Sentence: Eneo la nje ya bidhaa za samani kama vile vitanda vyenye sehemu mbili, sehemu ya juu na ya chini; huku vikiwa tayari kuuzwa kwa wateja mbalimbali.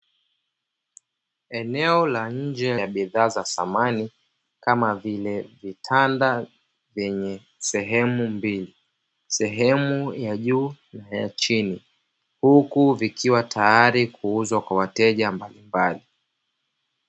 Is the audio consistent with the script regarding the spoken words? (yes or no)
yes